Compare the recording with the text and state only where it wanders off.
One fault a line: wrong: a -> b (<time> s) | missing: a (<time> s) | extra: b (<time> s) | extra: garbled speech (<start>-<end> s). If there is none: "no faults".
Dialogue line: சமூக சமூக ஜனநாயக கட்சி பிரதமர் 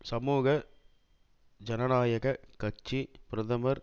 missing: சமூக (0.5 s)